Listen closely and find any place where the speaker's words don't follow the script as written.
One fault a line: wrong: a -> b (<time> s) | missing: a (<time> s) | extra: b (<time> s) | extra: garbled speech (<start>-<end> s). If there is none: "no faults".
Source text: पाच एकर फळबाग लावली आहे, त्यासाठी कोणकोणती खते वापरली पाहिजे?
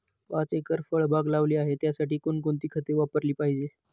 no faults